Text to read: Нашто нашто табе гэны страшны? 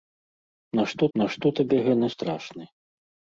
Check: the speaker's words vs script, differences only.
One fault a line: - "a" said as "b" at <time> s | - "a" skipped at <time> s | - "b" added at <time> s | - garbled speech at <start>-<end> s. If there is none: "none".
none